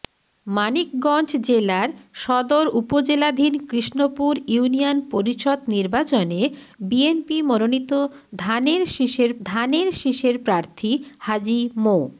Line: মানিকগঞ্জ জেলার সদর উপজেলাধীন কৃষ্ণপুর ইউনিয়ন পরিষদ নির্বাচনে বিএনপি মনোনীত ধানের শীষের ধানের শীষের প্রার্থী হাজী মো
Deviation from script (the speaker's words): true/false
false